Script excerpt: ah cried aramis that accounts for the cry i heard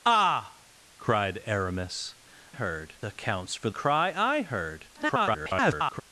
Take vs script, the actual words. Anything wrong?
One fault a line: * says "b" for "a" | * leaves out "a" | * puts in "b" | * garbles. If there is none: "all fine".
* says "heard" for "that"
* leaves out "the"
* garbles